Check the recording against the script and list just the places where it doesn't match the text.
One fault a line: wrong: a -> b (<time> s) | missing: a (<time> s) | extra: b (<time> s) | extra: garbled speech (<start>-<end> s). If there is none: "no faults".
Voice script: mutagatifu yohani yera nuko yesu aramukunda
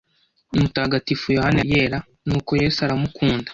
no faults